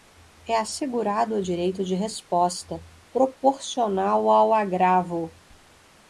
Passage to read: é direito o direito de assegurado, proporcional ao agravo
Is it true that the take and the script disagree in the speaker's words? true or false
true